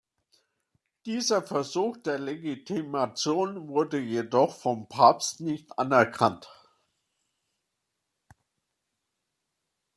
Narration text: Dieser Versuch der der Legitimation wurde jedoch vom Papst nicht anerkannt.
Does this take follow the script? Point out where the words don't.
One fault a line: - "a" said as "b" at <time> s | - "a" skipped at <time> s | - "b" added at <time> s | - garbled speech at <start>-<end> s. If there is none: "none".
- "der" skipped at 2.2 s